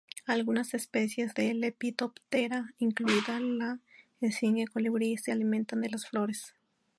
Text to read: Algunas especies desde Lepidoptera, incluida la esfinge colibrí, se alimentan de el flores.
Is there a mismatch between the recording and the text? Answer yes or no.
yes